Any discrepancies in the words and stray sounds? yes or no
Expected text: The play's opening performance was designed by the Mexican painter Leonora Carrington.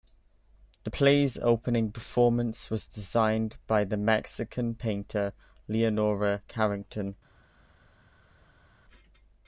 no